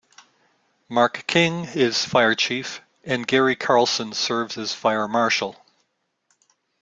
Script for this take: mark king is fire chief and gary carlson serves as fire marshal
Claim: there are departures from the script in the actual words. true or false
false